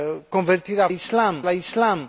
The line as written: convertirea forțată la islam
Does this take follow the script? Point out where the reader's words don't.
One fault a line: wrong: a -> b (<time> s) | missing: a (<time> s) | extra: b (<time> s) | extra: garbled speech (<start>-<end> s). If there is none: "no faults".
wrong: forțată -> islam (0.9 s)